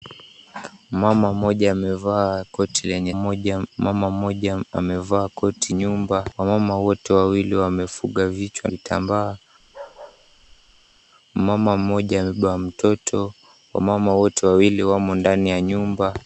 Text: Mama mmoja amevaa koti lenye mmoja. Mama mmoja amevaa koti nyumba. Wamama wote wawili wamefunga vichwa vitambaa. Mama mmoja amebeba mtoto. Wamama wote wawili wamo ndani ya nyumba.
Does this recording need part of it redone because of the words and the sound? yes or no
yes